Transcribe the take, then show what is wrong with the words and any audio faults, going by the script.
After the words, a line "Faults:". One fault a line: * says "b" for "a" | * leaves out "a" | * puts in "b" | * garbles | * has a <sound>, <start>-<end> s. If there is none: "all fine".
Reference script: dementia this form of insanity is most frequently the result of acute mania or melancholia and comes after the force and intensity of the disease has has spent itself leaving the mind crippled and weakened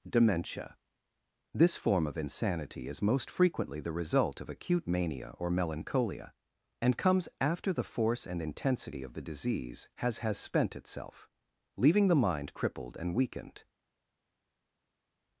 dementia this form of insanity is most frequently the result of acute mania or melancholia and comes after the force and intensity of the disease has has spent itself leaving the mind crippled and weakened
Faults:
all fine